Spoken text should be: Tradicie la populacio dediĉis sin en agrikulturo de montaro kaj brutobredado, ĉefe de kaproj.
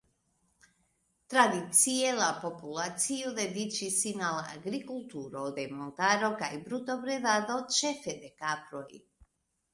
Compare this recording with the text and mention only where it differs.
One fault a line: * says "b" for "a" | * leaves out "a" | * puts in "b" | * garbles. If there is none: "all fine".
* says "al" for "en"